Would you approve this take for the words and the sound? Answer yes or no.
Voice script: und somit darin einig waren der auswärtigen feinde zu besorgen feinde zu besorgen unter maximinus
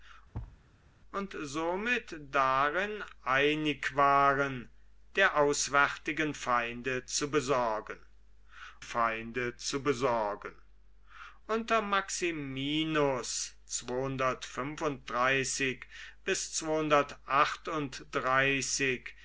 no